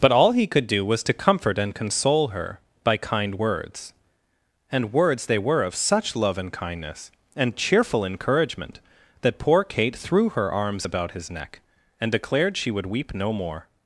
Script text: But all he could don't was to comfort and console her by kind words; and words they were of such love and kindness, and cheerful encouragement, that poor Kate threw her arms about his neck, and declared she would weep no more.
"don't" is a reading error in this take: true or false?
true